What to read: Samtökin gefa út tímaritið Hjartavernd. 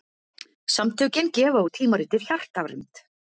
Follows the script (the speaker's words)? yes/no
yes